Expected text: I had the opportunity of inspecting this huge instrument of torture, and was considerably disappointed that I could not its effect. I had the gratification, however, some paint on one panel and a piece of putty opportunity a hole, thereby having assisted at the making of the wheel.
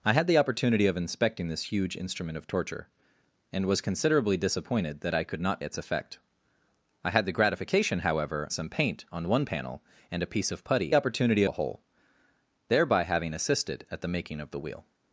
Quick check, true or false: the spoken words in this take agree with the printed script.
true